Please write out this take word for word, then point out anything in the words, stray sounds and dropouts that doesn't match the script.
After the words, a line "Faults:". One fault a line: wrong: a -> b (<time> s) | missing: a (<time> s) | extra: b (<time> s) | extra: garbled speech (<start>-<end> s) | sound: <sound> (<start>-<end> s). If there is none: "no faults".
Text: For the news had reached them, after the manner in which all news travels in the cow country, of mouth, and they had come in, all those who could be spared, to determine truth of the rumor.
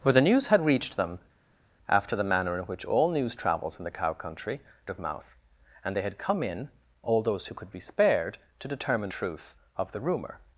For the news had reached them, after the manner in which all news travels in the cow country, of mouth, and they had come in, all those who could be spared, to determine truth of the rumor.
Faults:
no faults